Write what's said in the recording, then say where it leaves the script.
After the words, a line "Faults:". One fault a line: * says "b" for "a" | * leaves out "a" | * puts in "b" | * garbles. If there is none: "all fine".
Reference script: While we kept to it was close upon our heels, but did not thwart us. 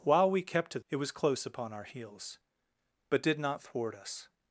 While we kept to it was close upon our heels, but did not thwart us.
Faults:
all fine